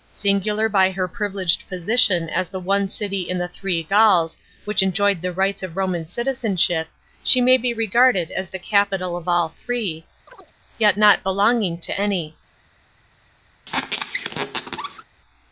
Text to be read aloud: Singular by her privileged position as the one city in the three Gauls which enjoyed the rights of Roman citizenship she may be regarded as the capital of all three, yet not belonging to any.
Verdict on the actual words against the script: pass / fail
pass